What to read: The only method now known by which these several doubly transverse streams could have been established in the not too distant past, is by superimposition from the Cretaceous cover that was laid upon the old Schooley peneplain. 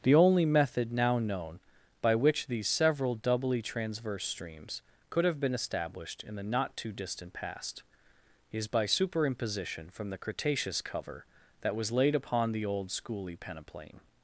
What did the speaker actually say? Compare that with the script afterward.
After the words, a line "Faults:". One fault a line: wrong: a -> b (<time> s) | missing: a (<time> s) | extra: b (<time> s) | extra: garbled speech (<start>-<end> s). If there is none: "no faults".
The only method now known by which these several doubly transverse streams could have been established in the not too distant past, is by superimposition from the Cretaceous cover that was laid upon the old Schooley peneplain.
Faults:
no faults